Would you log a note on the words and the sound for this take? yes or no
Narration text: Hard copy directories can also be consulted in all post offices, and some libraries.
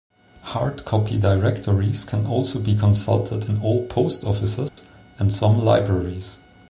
yes